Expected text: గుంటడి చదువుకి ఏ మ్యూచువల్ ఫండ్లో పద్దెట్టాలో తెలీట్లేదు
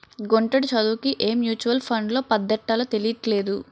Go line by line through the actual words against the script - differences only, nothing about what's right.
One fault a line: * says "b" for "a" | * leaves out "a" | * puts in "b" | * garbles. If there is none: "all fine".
all fine